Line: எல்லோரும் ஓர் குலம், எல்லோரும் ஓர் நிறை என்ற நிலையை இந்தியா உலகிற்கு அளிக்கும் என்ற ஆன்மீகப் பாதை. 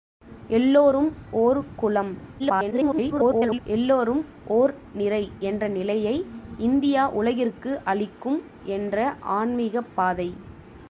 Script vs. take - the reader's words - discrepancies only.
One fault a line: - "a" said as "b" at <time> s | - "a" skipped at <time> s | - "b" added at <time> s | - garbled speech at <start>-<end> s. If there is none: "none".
- garbled speech at 2.4-3.6 s